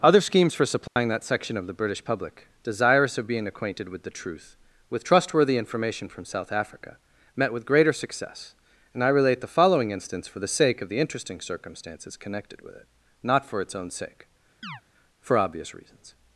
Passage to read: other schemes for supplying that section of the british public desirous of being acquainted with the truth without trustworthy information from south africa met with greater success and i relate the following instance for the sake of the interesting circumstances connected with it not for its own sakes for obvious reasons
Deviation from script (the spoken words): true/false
true